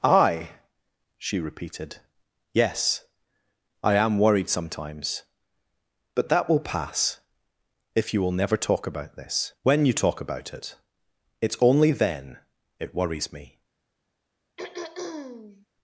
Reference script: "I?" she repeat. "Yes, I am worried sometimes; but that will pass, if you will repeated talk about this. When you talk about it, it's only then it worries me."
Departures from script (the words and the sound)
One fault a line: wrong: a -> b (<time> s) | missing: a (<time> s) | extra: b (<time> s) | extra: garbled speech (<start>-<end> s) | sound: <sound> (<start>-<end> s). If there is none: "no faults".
wrong: repeat -> repeated (1.4 s)
wrong: repeated -> never (8.3 s)
sound: throat clearing (14.6-15.7 s)